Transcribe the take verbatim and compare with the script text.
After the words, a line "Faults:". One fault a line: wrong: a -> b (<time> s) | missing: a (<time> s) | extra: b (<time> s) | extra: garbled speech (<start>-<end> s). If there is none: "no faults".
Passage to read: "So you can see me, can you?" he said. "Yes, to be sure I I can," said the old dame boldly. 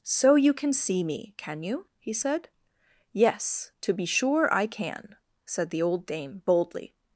"So you can see me, can you?" he said. "Yes, to be sure I can," said the old dame boldly.
Faults:
missing: I (4.7 s)